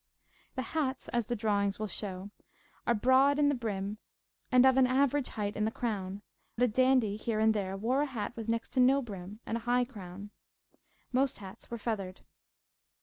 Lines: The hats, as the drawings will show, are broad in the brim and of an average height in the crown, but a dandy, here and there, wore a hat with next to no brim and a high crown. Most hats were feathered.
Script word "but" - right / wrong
wrong